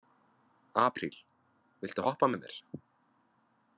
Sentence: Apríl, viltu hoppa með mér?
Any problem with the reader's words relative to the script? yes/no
no